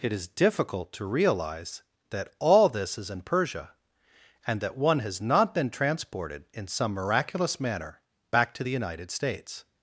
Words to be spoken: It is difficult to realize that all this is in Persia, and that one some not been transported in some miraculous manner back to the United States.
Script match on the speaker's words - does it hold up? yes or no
no